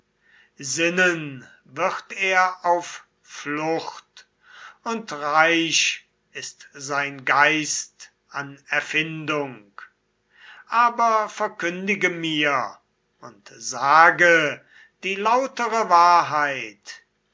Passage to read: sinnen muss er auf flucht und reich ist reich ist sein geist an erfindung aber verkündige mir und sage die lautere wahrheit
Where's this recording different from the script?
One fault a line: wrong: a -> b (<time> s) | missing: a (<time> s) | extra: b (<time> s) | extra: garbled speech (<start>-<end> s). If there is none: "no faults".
wrong: muss -> wird (1.6 s)
missing: reich ist (6.7 s)